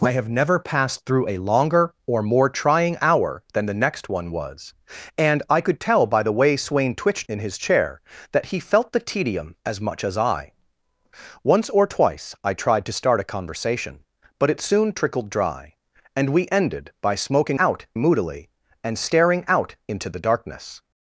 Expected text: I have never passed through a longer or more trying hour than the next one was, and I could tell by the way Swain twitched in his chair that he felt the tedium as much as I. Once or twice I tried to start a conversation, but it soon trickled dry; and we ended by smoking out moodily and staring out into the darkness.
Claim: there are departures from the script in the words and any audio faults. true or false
false